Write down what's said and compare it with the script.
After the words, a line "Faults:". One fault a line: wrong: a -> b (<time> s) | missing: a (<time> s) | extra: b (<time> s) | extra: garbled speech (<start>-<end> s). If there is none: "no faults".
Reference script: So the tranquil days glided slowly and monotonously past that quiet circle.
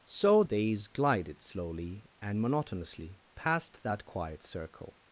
So days glided slowly and monotonously past that quiet circle.
Faults:
missing: the tranquil (0.4 s)